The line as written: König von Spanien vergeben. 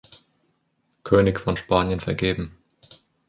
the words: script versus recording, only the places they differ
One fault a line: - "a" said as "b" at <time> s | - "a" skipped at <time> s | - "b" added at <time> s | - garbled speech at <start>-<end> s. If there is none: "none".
none